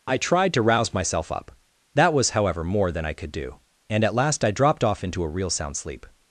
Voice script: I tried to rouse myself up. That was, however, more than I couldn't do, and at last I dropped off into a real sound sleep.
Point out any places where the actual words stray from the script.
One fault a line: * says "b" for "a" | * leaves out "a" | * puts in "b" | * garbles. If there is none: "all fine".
* says "could" for "couldn't"